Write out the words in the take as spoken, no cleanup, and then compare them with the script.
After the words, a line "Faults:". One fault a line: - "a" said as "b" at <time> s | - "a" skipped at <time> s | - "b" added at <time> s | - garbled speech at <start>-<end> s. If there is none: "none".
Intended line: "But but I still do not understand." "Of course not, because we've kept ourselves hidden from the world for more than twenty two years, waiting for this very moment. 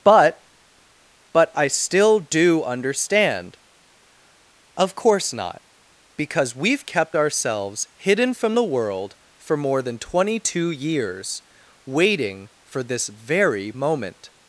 "But but I still do understand." "Of course not, because we've kept ourselves hidden from the world for more than twenty two years, waiting for this very moment.
Faults:
- "not" skipped at 2.6 s